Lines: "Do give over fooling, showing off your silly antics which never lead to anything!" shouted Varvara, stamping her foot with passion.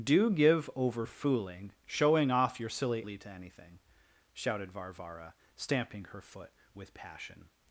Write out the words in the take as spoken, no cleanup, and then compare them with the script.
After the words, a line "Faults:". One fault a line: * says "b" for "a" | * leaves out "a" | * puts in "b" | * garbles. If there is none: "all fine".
"Do give over fooling, showing off your silly lead to anything!" shouted Varvara, stamping her foot with passion.
Faults:
* leaves out "antics which never"